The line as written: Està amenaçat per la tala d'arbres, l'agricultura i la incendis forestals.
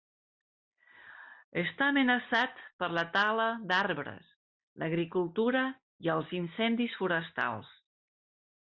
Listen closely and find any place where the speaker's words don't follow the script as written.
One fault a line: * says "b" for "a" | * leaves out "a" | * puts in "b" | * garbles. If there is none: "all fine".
* says "els" for "la"